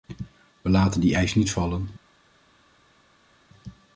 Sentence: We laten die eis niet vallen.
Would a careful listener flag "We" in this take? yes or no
no